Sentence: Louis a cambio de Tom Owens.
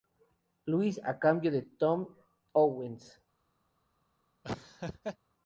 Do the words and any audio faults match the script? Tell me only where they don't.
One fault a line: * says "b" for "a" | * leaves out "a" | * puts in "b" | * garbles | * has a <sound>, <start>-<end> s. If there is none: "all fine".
* has a laugh, 4.4-5.2 s